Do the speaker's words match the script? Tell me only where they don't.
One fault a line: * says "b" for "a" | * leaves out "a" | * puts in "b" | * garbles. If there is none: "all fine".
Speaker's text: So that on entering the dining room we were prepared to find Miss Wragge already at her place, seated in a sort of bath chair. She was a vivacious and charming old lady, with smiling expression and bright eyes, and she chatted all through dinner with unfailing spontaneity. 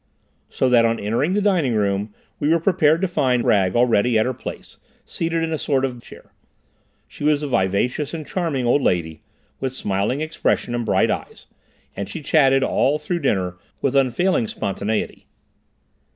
* leaves out "Miss"
* leaves out "bath"